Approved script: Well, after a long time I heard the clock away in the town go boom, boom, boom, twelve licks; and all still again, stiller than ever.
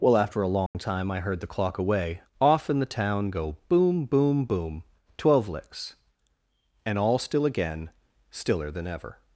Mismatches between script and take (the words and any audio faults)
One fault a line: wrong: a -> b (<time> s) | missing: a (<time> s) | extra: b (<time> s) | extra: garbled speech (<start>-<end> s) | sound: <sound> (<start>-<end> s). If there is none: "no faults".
sound: dropout (0.7-0.7 s)
extra: off (2.4 s)